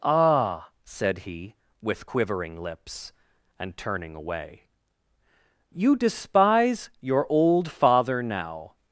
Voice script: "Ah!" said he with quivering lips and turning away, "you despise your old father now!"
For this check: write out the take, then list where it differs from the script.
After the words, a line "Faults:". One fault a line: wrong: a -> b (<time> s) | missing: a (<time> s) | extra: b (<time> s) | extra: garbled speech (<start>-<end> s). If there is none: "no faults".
"Ah!" said he with quivering lips and turning away, "you despise your old father now!"
Faults:
no faults